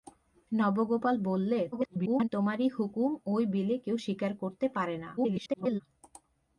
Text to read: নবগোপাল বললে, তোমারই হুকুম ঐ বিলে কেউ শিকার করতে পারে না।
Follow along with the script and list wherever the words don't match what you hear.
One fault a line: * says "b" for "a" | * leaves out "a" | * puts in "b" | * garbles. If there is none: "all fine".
* garbles
* garbles